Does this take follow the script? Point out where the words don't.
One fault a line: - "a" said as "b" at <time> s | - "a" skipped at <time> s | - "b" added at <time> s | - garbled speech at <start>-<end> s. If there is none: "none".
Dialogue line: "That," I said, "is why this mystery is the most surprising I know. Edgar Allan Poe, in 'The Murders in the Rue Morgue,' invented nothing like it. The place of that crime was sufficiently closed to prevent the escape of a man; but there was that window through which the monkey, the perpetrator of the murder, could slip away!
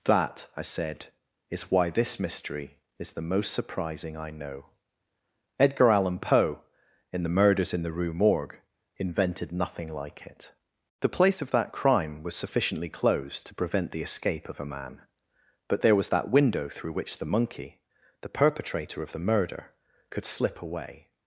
none